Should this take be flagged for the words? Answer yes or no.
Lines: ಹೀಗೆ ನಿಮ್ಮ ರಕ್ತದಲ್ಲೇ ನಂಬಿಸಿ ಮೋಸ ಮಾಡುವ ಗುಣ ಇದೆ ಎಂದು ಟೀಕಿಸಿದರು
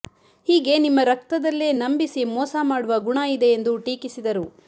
no